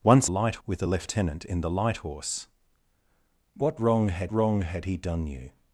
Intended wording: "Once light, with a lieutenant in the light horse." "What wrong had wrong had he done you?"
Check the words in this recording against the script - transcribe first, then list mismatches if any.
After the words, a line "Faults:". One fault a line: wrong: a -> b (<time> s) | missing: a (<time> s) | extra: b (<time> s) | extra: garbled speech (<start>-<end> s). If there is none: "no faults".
"Once light, with a lieutenant in the light horse." "What wrong had wrong had he done you?"
Faults:
no faults